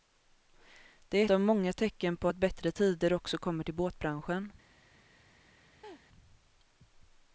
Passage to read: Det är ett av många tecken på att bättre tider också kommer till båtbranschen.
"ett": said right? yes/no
no